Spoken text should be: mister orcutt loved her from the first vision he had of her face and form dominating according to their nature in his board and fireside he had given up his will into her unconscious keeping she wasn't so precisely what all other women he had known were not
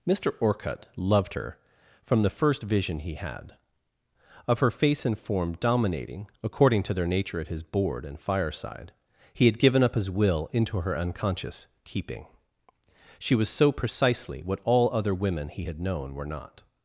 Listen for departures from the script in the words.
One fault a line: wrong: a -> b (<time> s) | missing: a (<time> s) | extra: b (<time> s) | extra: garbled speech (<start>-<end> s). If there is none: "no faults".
wrong: in -> at (7.4 s)
wrong: wasn't -> was (13.4 s)